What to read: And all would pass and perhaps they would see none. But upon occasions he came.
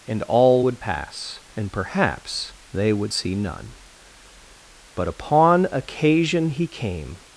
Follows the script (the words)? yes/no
no